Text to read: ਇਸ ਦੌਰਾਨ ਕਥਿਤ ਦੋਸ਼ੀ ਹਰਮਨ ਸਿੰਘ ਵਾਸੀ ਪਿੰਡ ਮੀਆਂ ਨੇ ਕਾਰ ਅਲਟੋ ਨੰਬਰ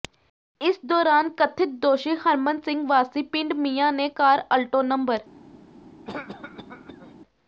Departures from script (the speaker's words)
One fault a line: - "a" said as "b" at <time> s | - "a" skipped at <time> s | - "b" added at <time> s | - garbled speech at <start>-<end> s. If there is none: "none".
none